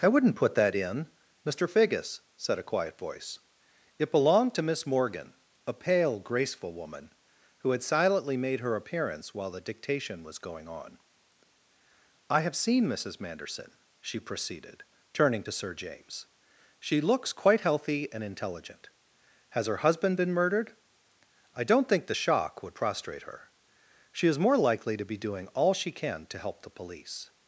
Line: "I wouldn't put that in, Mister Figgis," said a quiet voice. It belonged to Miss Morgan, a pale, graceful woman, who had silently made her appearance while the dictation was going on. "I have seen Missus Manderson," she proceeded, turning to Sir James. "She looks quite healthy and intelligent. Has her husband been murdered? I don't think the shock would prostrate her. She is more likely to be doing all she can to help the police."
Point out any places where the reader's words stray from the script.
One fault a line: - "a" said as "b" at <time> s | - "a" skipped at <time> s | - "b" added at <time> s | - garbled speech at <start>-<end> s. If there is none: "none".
none